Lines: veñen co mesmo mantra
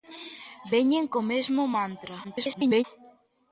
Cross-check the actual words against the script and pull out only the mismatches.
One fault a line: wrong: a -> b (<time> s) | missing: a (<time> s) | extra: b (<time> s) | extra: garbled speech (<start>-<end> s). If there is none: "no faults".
extra: garbled speech (2.2-2.8 s)